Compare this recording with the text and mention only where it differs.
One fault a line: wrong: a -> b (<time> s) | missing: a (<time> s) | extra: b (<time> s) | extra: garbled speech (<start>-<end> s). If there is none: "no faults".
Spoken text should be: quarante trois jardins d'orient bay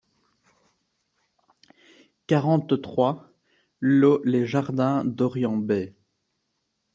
extra: lot les (3.8 s)